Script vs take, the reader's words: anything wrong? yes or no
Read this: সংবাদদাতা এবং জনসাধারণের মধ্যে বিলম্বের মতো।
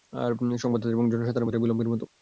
no